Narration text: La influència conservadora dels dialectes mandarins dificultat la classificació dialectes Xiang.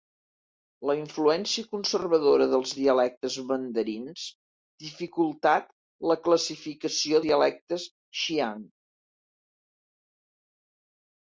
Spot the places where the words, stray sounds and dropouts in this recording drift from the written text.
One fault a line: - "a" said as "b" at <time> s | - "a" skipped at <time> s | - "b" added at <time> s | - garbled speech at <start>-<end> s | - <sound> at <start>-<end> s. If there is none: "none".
none